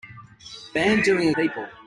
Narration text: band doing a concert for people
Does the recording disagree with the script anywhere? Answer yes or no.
yes